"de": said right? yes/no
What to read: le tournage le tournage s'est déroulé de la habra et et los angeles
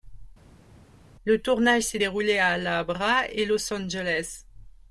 no